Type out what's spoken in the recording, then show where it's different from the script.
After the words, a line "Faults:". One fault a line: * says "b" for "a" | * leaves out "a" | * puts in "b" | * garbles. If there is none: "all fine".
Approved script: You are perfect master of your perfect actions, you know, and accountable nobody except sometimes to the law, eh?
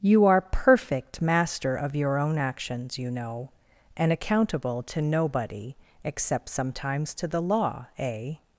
You are perfect master of your own actions, you know, and accountable to nobody except sometimes to the law, eh?
Faults:
* says "own" for "perfect"
* puts in "to"